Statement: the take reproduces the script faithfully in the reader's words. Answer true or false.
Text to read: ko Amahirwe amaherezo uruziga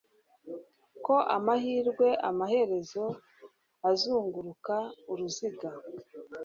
false